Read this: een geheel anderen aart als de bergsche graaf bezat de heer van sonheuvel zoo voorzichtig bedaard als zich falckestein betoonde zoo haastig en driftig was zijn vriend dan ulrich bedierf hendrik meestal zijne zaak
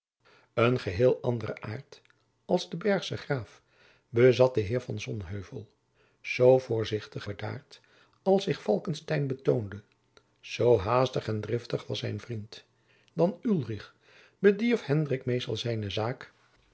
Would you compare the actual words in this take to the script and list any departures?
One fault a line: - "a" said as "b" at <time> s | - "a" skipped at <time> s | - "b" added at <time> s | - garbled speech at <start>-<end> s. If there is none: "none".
none